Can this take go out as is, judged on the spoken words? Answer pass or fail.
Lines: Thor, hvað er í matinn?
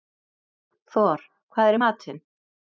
pass